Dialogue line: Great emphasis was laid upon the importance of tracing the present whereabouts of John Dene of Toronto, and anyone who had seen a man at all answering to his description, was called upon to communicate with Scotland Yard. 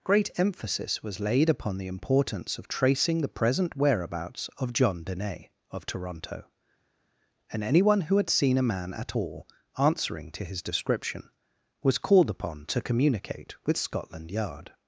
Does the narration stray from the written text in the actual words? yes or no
no